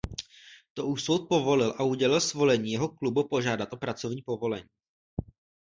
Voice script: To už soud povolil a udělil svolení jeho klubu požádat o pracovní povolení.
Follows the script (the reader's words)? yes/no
yes